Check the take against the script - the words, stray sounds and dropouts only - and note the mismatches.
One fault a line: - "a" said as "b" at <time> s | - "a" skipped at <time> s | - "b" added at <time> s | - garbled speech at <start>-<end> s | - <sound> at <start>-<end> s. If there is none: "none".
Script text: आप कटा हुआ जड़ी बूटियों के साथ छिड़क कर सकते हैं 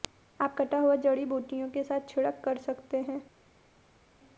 none